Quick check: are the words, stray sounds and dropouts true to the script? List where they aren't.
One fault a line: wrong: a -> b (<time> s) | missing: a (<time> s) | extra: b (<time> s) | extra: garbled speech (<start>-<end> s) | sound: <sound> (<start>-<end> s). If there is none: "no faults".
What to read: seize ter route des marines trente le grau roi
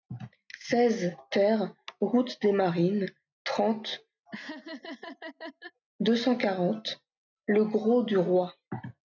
sound: laugh (4.3-5.8 s)
extra: deux cent quarante (6.0 s)
extra: du (8.0 s)